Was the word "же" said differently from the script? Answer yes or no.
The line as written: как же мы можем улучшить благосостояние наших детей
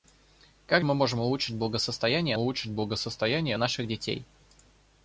yes